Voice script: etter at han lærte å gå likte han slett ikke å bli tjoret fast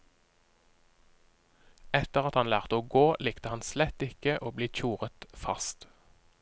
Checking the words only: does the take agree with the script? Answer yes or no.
yes